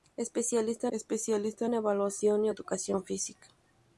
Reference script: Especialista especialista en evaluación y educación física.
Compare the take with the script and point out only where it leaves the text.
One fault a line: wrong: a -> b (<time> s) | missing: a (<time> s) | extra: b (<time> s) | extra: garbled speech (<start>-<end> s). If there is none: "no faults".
no faults